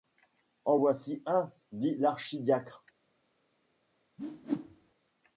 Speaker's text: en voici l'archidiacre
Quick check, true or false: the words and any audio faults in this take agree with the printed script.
false